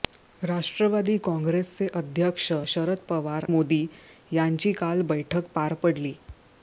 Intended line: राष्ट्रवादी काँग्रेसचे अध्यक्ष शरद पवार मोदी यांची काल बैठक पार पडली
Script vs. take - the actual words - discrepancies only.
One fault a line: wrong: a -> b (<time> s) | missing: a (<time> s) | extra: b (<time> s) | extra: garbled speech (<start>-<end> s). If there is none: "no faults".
no faults